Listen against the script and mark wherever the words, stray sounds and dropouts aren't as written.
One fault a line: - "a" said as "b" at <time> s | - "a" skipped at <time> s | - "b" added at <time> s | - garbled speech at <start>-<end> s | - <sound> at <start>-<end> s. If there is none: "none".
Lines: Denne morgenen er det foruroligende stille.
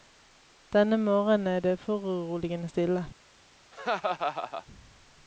- laugh at 3.7-4.7 s